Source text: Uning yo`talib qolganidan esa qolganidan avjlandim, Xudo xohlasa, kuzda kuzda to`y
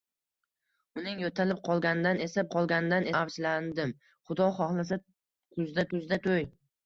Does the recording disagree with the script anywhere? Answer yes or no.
no